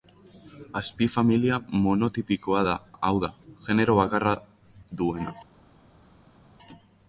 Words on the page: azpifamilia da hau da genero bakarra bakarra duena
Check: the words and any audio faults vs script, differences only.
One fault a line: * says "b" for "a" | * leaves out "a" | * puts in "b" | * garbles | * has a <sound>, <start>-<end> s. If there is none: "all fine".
* puts in "monotipikoa"
* leaves out "bakarra"